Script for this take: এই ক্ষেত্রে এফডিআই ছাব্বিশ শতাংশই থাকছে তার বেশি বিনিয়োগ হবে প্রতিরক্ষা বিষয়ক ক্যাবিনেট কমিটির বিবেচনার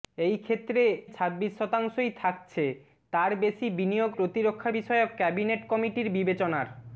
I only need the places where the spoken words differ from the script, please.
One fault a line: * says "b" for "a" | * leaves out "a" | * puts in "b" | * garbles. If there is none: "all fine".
* leaves out "এফডিআই"
* leaves out "হবে"